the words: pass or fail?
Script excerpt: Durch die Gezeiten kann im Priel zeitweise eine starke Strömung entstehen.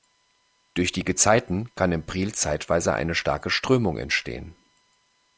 pass